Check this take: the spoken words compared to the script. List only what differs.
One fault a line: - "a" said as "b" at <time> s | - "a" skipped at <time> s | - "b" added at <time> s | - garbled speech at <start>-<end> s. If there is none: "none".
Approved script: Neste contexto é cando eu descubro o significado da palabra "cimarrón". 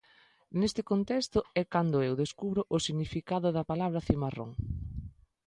none